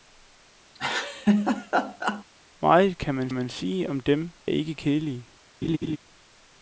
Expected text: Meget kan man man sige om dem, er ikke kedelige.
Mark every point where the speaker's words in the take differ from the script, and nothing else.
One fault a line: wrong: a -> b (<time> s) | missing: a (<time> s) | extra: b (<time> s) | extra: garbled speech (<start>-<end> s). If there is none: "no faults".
no faults